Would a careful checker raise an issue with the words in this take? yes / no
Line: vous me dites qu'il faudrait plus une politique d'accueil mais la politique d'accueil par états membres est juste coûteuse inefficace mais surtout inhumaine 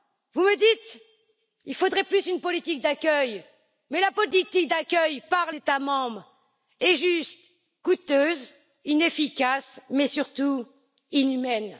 no